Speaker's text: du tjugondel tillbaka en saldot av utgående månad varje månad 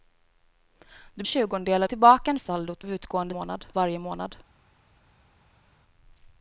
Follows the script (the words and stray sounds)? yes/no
yes